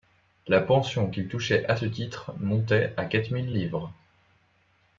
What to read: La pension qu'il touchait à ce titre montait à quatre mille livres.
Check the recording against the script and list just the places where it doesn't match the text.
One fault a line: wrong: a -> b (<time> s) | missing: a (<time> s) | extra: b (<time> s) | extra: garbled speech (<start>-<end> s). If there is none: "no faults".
no faults